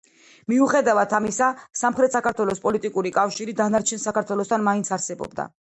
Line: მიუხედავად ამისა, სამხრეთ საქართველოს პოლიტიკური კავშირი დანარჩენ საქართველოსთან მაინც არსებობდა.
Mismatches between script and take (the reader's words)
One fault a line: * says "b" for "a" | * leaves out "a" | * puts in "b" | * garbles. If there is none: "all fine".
all fine